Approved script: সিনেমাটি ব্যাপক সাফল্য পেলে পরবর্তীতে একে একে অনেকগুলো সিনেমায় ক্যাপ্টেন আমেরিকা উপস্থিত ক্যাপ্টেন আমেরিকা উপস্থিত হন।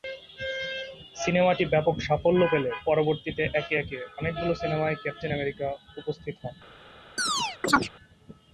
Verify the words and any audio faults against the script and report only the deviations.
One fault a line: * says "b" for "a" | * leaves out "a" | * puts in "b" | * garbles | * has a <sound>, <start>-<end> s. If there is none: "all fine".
* leaves out "ক্যাপ্টেন আমেরিকা উপস্থিত"
* has a chirp, 7.2-7.9 s